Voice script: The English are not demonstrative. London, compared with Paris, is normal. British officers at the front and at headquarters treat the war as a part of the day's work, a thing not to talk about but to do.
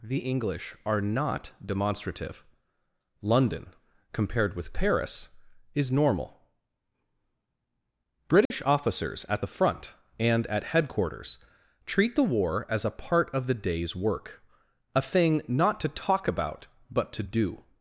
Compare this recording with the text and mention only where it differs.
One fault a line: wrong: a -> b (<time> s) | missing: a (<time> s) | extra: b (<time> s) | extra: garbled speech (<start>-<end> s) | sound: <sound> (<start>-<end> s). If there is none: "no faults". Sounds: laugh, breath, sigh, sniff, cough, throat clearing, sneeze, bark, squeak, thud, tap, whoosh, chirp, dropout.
sound: dropout (8.5-8.5 s)